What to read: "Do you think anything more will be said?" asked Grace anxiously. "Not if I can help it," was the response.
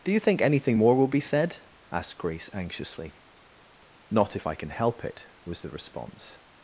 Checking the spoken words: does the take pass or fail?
pass